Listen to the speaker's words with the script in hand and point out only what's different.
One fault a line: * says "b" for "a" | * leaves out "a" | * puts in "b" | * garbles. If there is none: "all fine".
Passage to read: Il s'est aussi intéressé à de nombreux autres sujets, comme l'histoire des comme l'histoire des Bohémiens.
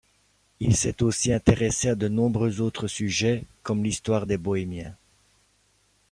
* leaves out "comme l'histoire des"